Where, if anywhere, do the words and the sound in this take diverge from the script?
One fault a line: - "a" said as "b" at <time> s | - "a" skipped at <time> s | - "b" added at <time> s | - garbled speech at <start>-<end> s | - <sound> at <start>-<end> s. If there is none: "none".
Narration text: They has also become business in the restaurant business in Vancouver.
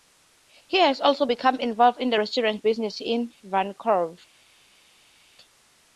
- "They" said as "He" at 0.7 s
- "business" said as "involved" at 1.6 s